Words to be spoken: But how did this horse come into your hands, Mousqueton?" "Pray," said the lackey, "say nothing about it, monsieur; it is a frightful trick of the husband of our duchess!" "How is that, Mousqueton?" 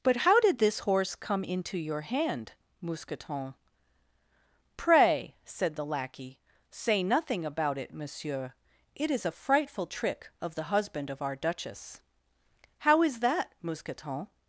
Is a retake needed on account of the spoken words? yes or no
yes